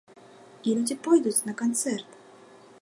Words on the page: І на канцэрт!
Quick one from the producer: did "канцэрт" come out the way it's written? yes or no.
yes